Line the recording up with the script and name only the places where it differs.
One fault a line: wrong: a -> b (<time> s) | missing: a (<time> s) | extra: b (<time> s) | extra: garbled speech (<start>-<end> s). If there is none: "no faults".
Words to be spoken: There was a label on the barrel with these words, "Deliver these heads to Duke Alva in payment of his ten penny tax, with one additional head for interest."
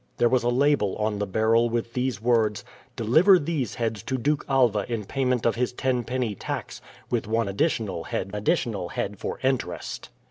extra: additional head (8.4 s)